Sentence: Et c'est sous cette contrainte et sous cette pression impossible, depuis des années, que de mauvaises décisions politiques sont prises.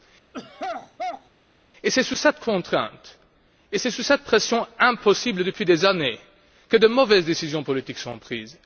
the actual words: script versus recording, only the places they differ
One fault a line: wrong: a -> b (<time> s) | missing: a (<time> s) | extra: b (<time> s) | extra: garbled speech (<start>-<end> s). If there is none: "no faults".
no faults